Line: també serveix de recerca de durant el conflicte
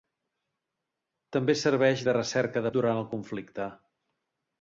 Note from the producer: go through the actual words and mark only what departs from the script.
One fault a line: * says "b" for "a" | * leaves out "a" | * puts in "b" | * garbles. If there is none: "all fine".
all fine